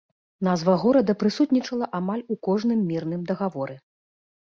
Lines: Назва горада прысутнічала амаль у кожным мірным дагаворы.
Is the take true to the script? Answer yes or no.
yes